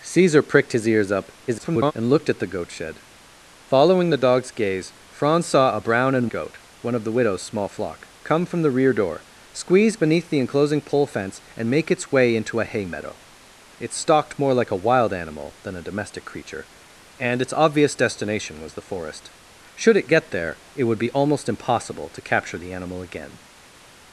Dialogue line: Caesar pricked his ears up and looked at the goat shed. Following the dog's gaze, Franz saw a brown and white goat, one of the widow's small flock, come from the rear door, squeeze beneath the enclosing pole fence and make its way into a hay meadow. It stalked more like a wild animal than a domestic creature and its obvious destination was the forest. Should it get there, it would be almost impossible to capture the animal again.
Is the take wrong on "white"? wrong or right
wrong